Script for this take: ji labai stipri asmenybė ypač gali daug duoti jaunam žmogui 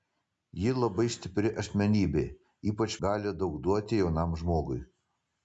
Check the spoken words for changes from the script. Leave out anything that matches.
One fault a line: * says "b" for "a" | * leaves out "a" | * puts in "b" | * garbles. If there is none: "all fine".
all fine